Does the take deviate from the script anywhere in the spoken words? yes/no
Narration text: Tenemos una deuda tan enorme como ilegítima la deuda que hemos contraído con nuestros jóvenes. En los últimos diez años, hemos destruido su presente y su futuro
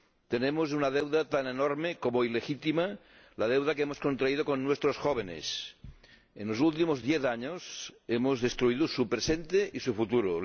no